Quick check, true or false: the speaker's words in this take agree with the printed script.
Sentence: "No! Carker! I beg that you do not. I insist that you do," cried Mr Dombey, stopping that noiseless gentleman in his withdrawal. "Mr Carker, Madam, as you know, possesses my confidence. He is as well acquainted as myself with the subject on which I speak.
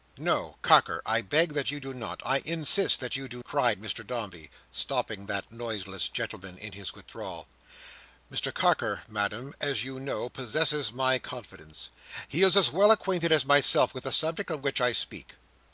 true